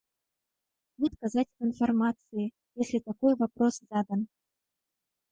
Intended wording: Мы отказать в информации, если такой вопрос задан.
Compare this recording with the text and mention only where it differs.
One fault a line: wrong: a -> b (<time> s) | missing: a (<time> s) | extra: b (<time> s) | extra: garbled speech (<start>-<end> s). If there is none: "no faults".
no faults